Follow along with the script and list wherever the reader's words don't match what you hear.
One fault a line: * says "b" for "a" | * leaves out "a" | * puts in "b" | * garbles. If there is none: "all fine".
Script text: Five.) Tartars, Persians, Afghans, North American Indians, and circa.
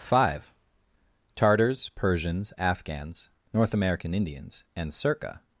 all fine